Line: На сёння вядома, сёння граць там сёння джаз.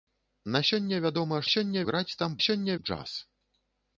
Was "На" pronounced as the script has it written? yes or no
yes